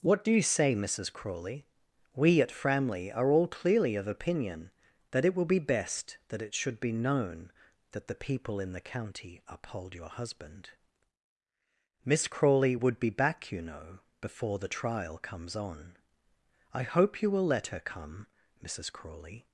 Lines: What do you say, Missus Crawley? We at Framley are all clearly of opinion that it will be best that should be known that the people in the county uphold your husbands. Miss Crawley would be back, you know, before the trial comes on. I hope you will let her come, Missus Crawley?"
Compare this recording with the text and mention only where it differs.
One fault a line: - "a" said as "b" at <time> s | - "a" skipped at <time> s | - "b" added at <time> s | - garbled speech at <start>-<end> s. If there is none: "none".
- "it" added at 6.4 s
- "husbands" said as "husband" at 10.1 s